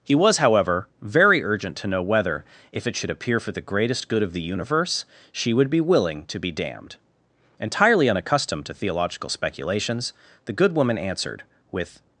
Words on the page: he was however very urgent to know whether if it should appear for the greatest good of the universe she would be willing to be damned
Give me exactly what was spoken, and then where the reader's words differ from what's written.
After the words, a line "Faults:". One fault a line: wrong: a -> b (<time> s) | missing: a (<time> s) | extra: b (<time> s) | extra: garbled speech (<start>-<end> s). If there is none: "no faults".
he was however very urgent to know whether if it should appear for the greatest good of the universe she would be willing to be damned entirely unaccustomed to theological speculations the good woman answered with
Faults:
extra: entirely unaccustomed to theological speculations the good woman answered with (7.6 s)